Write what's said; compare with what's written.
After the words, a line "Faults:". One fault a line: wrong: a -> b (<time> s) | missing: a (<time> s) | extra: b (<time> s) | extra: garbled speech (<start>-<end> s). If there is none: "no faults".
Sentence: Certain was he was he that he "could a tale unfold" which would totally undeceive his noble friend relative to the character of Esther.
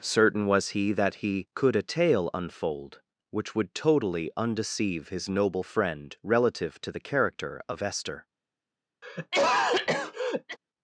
Certain was he that he "could a tale unfold" which would totally undeceive his noble friend relative to the character of Esther.
Faults:
missing: was he (0.9 s)